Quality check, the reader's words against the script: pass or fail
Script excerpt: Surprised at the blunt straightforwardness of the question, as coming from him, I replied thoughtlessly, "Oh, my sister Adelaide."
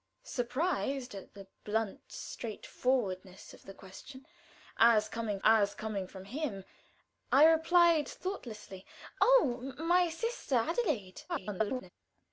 fail